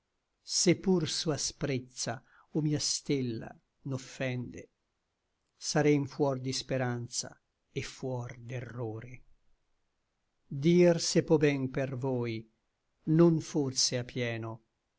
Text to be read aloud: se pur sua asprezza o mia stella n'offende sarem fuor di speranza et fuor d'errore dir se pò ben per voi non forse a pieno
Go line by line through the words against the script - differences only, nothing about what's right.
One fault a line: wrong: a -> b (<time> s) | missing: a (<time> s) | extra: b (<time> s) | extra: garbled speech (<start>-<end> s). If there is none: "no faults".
no faults